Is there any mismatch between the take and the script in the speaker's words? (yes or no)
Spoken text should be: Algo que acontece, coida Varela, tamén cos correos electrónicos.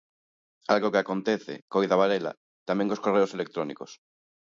no